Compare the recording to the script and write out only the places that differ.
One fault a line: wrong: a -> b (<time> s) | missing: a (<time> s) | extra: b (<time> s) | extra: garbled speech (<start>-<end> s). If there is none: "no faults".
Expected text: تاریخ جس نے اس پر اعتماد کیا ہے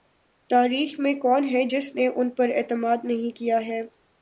extra: میں کون ہے (1.0 s)
wrong: اس -> ان (2.1 s)
extra: نہیں (3.0 s)